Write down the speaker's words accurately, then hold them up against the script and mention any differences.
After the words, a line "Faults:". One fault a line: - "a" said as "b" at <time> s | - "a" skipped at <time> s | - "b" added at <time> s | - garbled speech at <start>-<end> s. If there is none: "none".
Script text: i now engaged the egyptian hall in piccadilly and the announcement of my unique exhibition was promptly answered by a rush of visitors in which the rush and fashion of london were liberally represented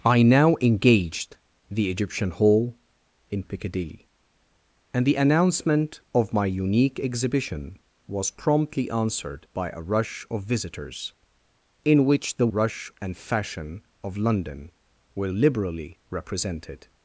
i now engaged the egyptian hall in piccadilly and the announcement of my unique exhibition was promptly answered by a rush of visitors in which the rush and fashion of london were liberally represented
Faults:
none